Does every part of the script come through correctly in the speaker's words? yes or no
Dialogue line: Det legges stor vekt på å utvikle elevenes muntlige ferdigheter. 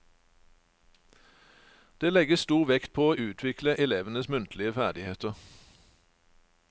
yes